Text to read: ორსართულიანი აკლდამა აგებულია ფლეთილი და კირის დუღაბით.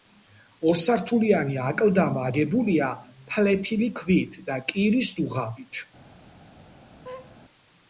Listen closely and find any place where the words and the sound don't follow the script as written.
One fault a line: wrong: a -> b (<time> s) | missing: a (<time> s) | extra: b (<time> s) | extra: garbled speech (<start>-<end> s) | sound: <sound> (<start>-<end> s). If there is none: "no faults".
extra: ქვით (4.0 s)
sound: laugh (7.0-7.4 s)